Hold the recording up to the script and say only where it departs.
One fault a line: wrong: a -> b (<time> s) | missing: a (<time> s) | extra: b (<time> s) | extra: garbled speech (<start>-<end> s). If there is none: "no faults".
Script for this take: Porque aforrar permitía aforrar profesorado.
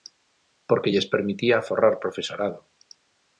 wrong: aforrar -> lles (0.9 s)